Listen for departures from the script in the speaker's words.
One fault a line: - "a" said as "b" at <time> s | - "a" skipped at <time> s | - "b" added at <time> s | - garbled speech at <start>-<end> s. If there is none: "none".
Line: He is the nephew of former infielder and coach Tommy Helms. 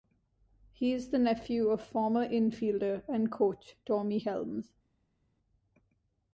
none